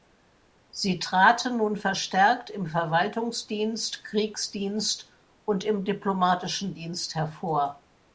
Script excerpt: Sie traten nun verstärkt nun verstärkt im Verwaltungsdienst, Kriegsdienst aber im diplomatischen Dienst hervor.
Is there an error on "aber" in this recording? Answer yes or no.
yes